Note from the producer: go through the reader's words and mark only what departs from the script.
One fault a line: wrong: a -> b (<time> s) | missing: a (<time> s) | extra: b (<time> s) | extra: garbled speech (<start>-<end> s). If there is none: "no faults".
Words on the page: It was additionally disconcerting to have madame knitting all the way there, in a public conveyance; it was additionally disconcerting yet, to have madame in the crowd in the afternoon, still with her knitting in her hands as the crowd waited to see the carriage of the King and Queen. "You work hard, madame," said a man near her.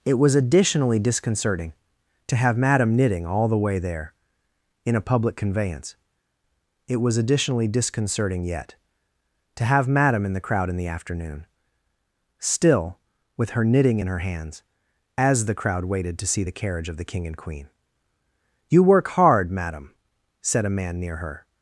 no faults